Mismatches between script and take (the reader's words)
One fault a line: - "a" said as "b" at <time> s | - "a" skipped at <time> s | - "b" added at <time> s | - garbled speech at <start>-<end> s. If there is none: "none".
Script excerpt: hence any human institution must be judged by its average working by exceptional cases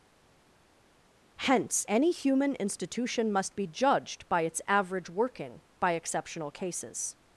none